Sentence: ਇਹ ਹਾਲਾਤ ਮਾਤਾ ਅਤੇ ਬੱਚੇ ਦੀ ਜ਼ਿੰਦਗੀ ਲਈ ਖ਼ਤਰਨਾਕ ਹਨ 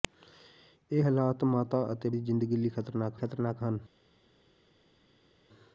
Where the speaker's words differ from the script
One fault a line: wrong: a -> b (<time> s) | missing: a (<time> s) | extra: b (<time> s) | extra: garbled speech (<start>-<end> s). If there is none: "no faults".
missing: ਬੱਚੇ (2.1 s)
extra: ਖ਼ਤਰਨਾਕ (3.1 s)